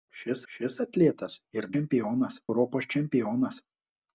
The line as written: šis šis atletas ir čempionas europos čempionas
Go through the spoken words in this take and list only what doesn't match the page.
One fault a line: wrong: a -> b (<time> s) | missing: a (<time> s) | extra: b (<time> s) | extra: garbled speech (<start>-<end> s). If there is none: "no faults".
no faults